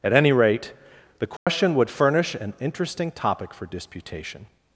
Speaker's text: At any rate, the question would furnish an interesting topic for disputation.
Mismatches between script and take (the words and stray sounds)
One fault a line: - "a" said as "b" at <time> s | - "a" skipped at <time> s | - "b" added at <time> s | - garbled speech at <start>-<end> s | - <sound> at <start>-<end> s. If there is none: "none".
- dropout at 1.4-1.5 s